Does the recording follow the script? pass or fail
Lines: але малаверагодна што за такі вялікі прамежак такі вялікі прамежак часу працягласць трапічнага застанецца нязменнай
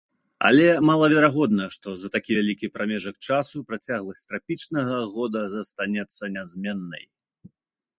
fail